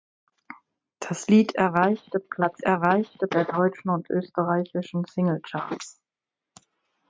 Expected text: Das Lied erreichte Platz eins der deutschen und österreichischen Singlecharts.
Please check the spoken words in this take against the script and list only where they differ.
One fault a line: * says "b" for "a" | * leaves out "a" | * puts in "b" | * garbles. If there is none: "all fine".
* says "erreichte" for "eins"